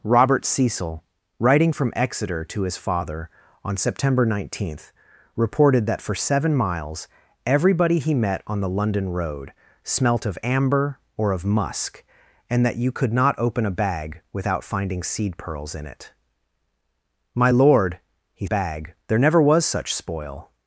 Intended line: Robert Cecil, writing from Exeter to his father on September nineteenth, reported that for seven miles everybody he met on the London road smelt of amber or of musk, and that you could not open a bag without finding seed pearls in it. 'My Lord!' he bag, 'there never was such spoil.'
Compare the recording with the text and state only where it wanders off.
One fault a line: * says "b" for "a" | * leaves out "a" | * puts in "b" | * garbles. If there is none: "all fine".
all fine